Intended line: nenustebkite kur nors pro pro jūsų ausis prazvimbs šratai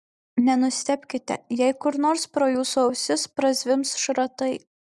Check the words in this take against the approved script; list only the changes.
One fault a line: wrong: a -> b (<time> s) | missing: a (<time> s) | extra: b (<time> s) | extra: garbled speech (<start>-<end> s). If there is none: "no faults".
extra: jei (1.6 s)
missing: pro (2.5 s)